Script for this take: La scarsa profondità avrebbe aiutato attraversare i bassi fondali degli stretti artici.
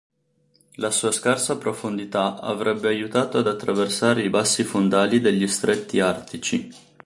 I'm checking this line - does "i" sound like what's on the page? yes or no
yes